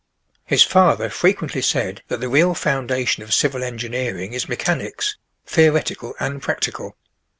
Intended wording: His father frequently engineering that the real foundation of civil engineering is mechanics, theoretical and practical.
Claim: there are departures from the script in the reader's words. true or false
true